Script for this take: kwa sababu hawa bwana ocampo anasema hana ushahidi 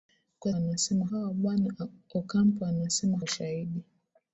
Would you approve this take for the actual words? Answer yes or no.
no